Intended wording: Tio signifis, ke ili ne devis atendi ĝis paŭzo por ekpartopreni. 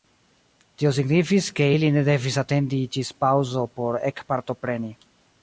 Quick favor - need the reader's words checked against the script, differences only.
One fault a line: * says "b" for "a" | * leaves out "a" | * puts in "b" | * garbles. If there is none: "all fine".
all fine